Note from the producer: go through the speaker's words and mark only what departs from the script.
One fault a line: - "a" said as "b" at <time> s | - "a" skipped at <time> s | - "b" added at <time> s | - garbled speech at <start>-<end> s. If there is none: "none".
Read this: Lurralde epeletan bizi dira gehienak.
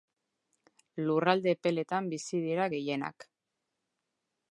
none